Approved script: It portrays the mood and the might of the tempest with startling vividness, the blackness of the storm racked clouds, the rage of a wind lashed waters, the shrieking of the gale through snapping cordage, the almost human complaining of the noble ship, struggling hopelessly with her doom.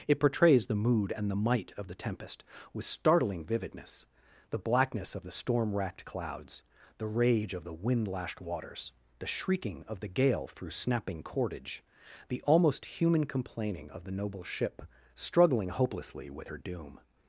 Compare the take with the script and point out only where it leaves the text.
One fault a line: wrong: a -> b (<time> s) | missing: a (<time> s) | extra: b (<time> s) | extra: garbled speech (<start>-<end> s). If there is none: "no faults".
wrong: a -> the (7.6 s)